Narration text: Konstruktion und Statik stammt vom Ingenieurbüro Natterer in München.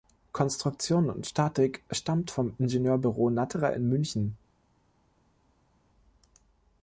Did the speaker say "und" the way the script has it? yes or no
yes